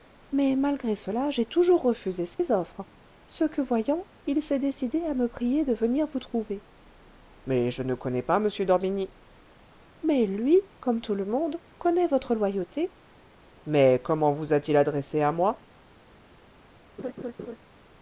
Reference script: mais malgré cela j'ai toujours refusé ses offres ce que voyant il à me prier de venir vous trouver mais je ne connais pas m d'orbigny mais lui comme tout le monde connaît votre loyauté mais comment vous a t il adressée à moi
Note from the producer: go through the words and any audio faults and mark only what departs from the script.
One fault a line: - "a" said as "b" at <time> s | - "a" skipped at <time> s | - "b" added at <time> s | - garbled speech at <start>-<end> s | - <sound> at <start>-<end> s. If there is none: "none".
- dropout at 2.3-2.4 s
- "s'est décidé" added at 4.4 s
- laugh at 17.0-17.6 s